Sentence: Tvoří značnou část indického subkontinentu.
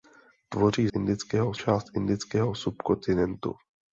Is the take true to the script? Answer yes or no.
no